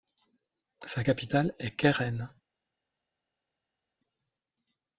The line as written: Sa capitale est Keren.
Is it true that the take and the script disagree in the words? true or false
false